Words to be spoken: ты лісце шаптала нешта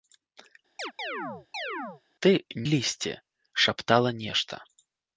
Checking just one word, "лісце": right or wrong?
right